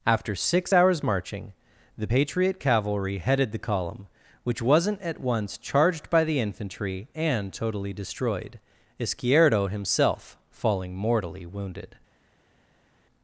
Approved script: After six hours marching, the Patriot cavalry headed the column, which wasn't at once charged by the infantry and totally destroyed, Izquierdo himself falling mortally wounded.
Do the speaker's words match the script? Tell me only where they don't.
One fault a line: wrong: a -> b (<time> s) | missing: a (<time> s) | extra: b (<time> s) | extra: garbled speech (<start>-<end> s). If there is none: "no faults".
no faults